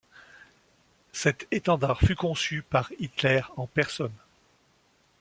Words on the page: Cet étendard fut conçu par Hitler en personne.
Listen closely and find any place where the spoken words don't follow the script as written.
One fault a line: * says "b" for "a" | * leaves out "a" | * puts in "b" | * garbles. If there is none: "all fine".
all fine